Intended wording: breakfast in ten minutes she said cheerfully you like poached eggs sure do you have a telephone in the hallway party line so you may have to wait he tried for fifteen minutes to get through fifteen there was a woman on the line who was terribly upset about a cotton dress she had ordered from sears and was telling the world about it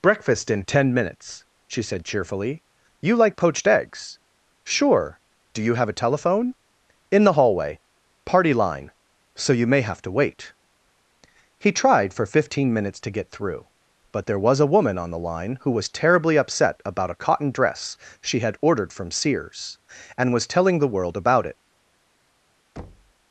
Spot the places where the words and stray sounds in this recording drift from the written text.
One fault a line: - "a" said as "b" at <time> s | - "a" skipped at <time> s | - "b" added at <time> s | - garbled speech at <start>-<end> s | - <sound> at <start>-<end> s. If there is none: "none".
- "fifteen" said as "but" at 14.1 s
- thud at 22.8-23.1 s